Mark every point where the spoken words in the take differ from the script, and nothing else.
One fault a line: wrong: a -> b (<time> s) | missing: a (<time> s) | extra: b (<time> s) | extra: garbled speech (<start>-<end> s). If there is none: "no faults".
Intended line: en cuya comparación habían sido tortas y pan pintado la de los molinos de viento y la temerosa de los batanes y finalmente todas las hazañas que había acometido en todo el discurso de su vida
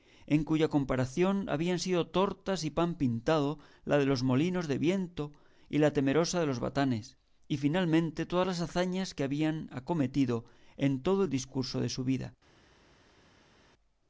no faults